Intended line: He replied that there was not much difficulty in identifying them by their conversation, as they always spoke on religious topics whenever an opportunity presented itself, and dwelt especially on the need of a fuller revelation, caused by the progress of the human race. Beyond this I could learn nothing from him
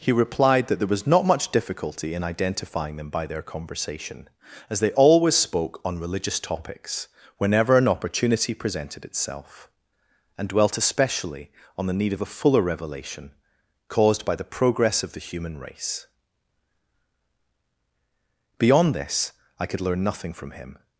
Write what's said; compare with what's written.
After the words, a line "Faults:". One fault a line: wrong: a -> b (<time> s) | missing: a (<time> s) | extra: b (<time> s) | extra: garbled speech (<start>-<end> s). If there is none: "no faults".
He replied that there was not much difficulty in identifying them by their conversation, as they always spoke on religious topics whenever an opportunity presented itself, and dwelt especially on the need of a fuller revelation, caused by the progress of the human race. Beyond this I could learn nothing from him
Faults:
no faults